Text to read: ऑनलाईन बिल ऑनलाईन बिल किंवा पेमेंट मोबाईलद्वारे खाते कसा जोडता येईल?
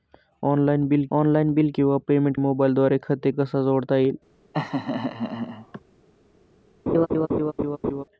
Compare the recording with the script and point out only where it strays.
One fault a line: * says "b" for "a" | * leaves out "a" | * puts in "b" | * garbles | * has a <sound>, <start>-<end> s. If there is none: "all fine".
* has a laugh, 4.5-5.8 s
* has a laugh, 6.9-8.0 s